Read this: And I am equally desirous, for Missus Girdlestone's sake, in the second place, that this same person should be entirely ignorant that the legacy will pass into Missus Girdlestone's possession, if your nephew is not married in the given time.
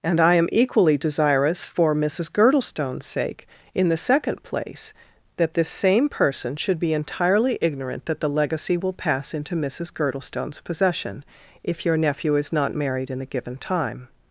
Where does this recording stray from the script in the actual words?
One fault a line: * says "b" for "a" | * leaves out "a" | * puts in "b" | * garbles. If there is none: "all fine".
all fine